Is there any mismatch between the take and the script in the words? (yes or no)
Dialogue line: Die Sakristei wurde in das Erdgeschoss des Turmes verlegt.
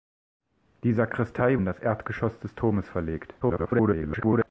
yes